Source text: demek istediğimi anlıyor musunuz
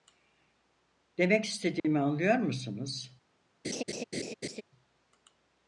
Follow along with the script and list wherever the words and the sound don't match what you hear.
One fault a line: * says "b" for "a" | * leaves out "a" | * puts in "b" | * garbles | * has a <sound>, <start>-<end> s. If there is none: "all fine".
* has a dropout, 1.8-1.8 s
* has a laugh, 3.6-4.6 s